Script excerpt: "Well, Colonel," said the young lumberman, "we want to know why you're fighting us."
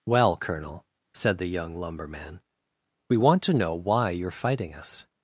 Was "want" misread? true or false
false